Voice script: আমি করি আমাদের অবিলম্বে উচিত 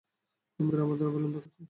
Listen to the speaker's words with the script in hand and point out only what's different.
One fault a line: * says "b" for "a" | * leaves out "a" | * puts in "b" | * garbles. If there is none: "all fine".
all fine